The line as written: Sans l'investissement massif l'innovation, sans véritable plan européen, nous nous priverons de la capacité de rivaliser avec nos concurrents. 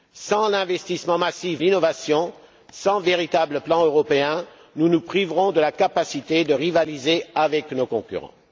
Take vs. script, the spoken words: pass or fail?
pass